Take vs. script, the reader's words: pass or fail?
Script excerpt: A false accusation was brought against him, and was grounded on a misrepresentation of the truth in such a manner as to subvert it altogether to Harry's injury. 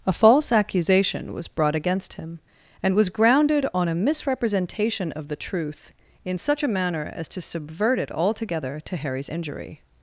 pass